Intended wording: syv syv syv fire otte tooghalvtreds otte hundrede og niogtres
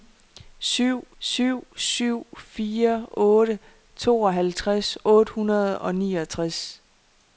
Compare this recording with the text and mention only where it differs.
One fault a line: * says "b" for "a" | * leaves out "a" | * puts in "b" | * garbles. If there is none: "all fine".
all fine